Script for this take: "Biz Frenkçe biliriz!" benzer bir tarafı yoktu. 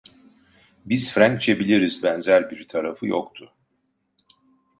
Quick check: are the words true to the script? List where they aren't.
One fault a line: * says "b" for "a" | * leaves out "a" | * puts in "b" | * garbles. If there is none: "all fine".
all fine